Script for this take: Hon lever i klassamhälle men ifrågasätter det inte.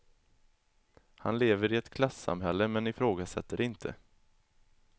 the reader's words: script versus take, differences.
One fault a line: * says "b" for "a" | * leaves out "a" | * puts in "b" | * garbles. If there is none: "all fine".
* says "Han" for "Hon"
* puts in "ett"